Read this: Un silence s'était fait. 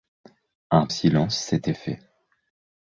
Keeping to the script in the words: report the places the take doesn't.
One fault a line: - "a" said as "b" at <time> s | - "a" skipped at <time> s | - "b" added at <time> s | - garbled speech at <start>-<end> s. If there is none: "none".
none